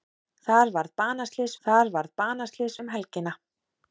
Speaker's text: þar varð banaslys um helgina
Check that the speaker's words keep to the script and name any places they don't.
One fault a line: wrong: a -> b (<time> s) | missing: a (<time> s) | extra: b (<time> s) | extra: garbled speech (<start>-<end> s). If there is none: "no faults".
extra: þar varð banaslys (1.7 s)